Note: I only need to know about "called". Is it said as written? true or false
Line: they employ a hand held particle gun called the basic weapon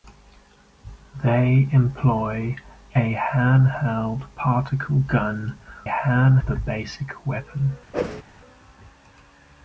false